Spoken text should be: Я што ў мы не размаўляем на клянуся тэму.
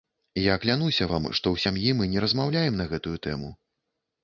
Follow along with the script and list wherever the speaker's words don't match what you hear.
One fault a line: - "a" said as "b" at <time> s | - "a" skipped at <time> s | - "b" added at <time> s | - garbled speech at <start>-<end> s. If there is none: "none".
- "клянуся вам" added at 0.6 s
- "сям'і" added at 1.6 s
- "клянуся" said as "гэтую" at 3.0 s